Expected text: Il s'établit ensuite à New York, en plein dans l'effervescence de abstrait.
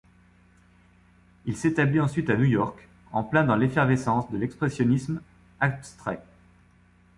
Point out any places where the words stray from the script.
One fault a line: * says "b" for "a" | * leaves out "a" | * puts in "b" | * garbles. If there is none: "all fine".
* puts in "l'expressionnisme"